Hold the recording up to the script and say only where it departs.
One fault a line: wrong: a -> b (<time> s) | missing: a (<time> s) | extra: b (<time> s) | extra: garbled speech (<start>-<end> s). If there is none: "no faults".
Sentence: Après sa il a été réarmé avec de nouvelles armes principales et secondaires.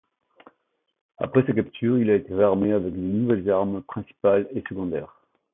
extra: capture (1.5 s)